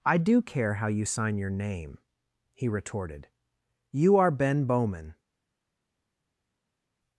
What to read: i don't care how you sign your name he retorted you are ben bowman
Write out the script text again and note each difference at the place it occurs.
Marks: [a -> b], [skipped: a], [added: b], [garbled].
i [don't -> do] care how you sign your name he retorted you are ben bowman